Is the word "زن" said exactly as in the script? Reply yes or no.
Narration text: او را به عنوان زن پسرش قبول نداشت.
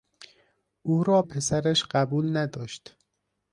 no